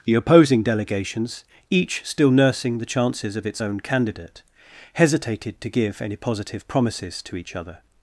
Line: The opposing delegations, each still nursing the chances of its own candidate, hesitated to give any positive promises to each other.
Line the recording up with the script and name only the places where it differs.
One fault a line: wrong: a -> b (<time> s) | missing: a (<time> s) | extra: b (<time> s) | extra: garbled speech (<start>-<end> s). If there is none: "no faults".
no faults